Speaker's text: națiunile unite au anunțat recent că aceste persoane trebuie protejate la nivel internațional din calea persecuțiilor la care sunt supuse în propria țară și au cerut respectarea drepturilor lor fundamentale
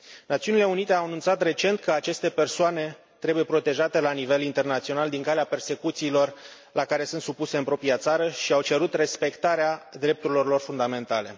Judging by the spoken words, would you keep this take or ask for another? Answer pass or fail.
pass